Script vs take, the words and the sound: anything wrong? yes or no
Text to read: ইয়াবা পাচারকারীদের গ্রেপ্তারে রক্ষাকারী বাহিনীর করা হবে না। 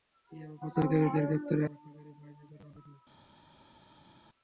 no